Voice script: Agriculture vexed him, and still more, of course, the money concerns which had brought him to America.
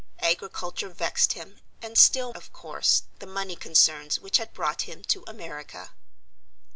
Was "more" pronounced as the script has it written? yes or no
no